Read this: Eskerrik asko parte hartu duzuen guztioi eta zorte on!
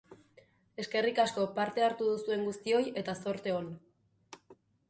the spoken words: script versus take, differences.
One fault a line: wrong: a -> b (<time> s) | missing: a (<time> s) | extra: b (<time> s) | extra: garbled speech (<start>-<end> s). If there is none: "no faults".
no faults